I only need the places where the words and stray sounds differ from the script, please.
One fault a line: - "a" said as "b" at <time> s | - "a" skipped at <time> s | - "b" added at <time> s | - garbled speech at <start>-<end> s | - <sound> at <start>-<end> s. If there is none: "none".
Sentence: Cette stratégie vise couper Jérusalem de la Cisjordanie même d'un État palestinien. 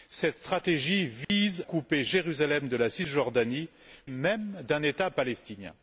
- dropout at 1.2-1.3 s